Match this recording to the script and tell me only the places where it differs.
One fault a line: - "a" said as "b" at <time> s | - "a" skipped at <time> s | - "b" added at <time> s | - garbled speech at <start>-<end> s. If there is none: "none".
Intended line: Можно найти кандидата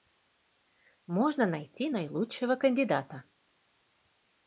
- "наилучшего" added at 1.9 s